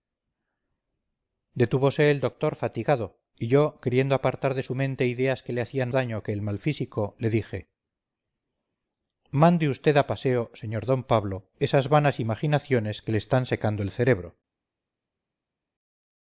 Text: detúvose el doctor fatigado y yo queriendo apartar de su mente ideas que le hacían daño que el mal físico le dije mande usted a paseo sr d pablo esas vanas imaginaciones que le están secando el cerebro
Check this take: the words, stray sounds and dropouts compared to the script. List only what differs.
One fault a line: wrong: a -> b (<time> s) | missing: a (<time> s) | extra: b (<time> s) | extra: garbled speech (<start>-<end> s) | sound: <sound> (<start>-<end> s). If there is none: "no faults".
no faults